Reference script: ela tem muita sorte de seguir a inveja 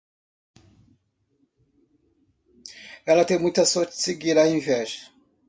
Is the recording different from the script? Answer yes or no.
no